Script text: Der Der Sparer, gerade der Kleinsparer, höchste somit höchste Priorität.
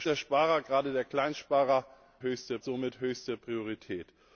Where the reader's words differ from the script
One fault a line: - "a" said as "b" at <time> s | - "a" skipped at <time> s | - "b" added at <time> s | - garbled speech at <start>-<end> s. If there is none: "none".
none